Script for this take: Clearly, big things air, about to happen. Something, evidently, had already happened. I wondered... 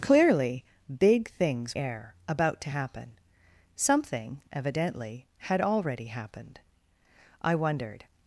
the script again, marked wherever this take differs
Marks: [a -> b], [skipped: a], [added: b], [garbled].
Clearly, big things air, about to happen. Something, evidently, had already happened. I wondered...